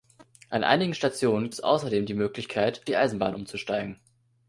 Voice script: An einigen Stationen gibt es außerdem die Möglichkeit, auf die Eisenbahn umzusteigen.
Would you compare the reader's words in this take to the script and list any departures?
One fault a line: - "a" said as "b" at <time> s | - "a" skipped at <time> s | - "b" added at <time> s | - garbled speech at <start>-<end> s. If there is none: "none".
- "gibt" skipped at 1.5 s
- "auf" skipped at 2.9 s